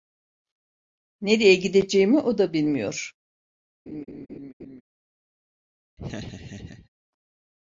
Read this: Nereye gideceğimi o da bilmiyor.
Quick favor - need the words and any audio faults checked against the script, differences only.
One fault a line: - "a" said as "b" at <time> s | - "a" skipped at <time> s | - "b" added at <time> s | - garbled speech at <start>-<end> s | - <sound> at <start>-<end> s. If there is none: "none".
- laugh at 3.9-4.8 s
- laugh at 6.0-6.9 s